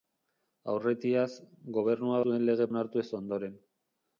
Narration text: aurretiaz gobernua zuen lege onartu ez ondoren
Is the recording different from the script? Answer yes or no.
no